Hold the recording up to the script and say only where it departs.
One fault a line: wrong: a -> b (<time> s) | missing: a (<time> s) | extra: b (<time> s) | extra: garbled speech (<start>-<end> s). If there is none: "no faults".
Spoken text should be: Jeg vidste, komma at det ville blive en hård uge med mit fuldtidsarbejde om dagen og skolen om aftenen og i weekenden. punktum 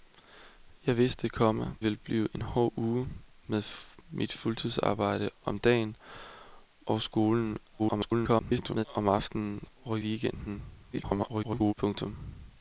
missing: at det (1.8 s)
extra: garbled speech (7.8-8.9 s)
extra: garbled speech (10.9-11.7 s)